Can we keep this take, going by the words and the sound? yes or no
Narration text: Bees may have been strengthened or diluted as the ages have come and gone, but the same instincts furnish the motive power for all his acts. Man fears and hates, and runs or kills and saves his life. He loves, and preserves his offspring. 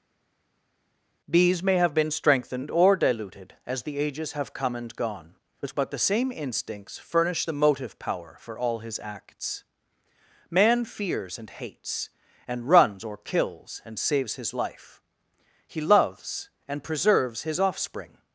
yes